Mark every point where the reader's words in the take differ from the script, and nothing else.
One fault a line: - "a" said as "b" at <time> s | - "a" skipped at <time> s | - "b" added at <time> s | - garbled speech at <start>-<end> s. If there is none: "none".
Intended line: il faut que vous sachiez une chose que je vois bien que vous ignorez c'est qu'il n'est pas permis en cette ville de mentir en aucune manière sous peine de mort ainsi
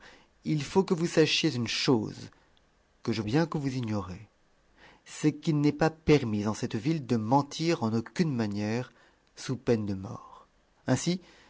- "vois" skipped at 3.2 s